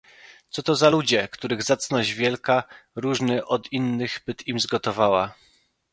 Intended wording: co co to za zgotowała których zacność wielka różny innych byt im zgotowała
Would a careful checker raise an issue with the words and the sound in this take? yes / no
yes